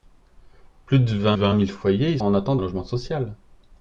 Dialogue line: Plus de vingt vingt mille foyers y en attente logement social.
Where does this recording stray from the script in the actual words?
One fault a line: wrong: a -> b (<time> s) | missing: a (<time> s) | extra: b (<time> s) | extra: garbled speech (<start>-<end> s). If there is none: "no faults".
no faults